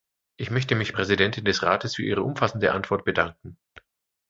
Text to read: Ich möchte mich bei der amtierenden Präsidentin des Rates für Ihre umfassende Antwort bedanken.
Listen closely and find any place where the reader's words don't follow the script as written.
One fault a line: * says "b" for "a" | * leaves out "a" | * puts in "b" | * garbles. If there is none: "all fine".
* leaves out "bei der amtierenden"